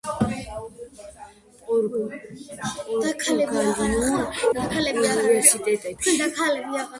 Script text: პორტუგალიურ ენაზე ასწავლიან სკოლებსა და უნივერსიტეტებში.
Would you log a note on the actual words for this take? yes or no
yes